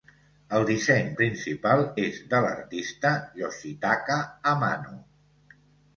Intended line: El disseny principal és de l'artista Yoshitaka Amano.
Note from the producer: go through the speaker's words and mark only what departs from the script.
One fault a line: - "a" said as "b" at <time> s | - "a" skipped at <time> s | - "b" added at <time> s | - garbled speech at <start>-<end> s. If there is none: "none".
none